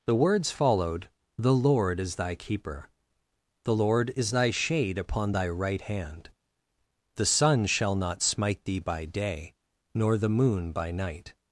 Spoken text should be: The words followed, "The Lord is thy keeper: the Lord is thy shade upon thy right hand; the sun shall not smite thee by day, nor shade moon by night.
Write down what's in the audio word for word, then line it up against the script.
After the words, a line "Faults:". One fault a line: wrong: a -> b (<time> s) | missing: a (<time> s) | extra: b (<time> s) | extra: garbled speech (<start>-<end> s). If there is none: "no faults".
The words followed, "The Lord is thy keeper: the Lord is thy shade upon thy right hand; the sun shall not smite thee by day, nor the moon by night.
Faults:
wrong: shade -> the (10.2 s)